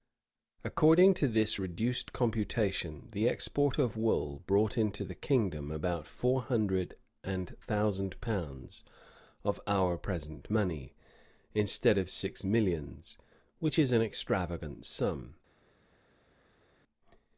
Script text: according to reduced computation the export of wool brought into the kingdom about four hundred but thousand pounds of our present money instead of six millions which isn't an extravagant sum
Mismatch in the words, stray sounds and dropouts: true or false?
true